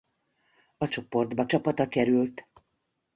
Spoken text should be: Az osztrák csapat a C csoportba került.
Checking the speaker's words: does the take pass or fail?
fail